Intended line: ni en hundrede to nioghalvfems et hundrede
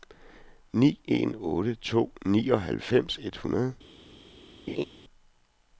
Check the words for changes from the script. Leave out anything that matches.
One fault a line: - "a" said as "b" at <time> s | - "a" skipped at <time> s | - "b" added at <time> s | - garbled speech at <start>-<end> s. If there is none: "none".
- "hundrede" said as "otte" at 1.5 s